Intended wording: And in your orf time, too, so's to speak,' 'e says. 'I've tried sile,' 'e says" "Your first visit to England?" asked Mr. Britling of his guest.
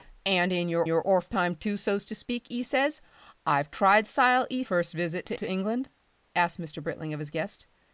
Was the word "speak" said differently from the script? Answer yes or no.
no